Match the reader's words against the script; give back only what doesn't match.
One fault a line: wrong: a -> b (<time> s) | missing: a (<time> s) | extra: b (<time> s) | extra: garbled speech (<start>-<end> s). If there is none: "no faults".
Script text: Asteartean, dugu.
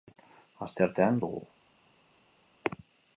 no faults